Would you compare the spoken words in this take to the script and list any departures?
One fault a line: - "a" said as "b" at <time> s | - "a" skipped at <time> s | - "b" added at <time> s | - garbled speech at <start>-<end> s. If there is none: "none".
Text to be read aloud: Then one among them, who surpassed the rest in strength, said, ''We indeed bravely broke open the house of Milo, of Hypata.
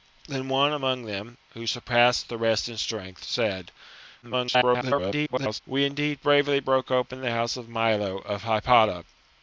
- garbled speech at 4.2-5.6 s